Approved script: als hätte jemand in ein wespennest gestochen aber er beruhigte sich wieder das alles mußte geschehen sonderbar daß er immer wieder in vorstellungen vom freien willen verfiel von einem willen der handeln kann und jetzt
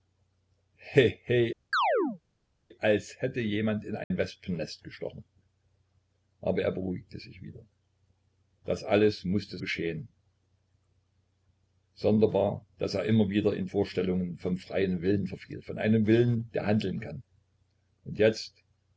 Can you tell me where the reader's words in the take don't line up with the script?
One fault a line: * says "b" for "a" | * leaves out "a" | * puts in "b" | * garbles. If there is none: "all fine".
all fine